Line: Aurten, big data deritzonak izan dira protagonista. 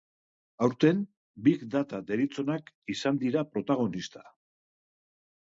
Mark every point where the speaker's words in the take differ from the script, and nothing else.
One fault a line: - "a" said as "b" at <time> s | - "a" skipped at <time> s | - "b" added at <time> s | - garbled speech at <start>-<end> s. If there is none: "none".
none